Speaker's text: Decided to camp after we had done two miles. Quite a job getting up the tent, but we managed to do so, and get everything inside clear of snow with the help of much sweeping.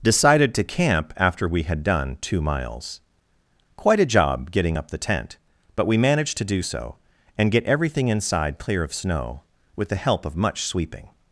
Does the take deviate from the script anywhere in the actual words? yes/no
no